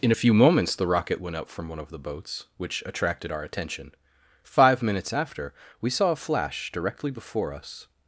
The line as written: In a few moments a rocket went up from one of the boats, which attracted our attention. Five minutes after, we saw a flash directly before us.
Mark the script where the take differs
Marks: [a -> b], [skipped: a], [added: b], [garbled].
In a few moments [a -> the] rocket went up from one of the boats, which attracted our attention. Five minutes after, we saw a flash directly before us.